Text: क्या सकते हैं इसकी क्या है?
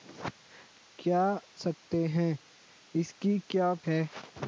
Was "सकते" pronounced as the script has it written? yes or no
yes